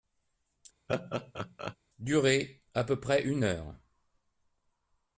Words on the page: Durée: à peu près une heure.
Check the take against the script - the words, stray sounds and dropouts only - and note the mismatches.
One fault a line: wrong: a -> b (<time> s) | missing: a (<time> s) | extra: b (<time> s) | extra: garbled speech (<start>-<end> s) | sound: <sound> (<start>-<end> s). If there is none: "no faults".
sound: laugh (0.9-1.8 s)